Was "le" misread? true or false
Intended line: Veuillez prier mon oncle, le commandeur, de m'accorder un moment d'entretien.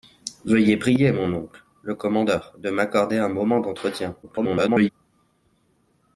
false